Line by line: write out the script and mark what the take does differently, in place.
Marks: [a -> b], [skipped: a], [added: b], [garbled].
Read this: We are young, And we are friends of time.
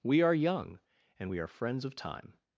We are young, And we are friends of time.